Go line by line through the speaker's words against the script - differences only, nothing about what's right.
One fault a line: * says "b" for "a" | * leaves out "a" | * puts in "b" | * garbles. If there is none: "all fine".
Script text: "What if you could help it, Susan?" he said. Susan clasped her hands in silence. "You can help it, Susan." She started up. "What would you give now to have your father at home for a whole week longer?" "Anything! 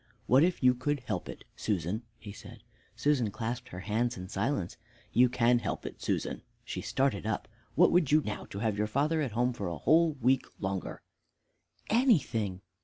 * leaves out "give"